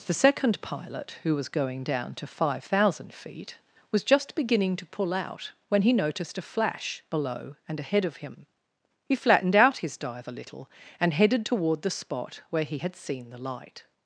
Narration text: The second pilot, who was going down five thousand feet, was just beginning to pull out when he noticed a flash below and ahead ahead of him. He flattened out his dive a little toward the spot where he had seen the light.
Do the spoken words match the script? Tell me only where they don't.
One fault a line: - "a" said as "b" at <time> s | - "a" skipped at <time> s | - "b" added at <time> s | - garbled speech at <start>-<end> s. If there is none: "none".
- "to" added at 2.1 s
- "ahead" skipped at 8.1 s
- "and headed" added at 11.0 s